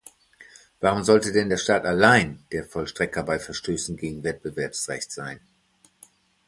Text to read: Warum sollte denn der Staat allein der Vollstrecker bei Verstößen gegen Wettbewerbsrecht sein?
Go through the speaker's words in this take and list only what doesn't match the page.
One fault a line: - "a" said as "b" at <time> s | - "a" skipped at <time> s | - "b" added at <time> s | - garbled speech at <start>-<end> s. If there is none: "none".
none